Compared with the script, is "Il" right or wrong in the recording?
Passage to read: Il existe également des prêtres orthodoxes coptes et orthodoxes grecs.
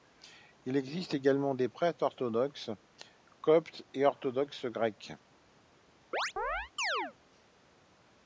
right